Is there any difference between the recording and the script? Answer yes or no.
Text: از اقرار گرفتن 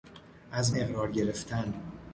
no